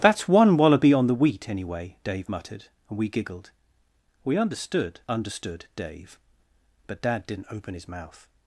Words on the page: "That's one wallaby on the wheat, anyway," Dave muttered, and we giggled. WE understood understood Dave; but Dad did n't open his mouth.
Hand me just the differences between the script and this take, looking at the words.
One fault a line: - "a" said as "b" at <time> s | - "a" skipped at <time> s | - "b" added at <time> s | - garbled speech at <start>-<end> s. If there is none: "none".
none